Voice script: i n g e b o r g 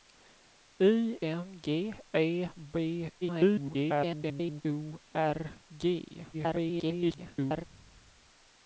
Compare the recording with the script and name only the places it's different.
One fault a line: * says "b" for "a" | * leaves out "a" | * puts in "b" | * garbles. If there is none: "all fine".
* garbles
* garbles